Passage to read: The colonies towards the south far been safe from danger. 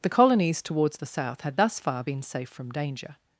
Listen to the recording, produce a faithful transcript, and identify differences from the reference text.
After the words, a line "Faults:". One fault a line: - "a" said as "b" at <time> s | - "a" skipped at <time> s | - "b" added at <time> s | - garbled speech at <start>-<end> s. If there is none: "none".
The colonies towards the south had thus far been safe from danger.
Faults:
- "had thus" added at 1.4 s